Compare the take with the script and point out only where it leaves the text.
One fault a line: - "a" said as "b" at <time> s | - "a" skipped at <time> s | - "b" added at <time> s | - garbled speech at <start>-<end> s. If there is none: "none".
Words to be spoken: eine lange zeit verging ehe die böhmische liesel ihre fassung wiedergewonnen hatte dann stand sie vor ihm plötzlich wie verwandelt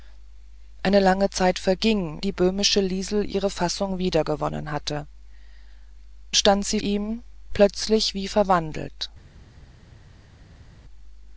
- "ehe" skipped at 2.2 s
- "dann" skipped at 5.1 s
- "vor" skipped at 6.8 s